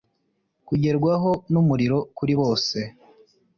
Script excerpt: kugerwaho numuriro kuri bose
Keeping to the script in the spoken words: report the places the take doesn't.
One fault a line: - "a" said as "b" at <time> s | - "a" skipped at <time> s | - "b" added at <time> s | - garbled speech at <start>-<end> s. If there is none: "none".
none